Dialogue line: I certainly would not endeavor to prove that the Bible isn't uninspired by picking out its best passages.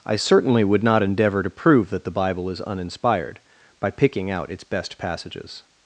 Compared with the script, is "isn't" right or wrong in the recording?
wrong